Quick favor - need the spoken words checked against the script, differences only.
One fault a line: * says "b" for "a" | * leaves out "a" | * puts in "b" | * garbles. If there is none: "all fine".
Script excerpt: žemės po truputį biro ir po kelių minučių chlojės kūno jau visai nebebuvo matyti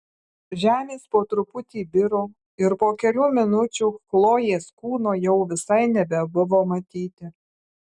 all fine